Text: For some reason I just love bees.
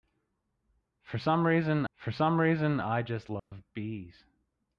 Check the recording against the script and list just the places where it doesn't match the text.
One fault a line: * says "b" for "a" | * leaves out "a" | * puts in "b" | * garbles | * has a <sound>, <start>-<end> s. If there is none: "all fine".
* puts in "for some reason"
* has a dropout, 3.4-3.5 s